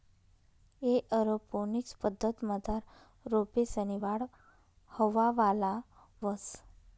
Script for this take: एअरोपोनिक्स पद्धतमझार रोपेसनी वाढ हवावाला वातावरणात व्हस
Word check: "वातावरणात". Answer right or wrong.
wrong